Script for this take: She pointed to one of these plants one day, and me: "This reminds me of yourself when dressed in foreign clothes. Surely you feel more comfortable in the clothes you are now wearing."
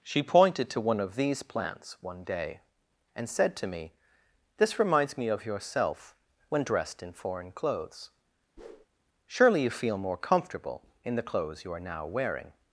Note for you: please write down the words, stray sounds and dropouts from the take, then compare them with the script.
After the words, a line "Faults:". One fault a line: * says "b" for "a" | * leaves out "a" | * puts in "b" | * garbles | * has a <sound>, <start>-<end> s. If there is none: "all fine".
She pointed to one of these plants one day, and said to me: "This reminds me of yourself when dressed in foreign clothes. Surely you feel more comfortable in the clothes you are now wearing."
Faults:
* puts in "said to"
* has a whoosh, 8.6-8.9 s